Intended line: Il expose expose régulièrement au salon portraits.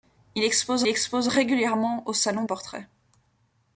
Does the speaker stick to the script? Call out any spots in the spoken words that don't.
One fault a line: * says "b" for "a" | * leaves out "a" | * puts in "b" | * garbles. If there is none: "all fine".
all fine